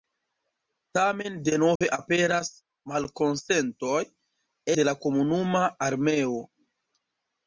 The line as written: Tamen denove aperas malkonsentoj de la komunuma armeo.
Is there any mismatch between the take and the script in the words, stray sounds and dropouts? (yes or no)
yes